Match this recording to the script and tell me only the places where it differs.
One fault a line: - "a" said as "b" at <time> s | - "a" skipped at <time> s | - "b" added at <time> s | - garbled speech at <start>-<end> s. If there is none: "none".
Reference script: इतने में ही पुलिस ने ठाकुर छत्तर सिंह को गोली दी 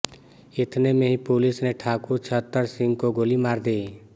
- "मार" added at 3.4 s